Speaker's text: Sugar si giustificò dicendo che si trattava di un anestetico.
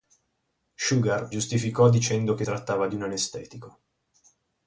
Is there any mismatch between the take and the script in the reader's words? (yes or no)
yes